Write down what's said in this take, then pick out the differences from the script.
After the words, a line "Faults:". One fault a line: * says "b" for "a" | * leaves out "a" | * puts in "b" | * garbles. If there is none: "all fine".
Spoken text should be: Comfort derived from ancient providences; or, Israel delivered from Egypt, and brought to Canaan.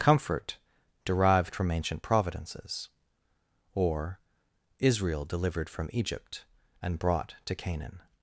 Comfort derived from ancient providences; or, Israel delivered from Egypt, and brought to Canaan.
Faults:
all fine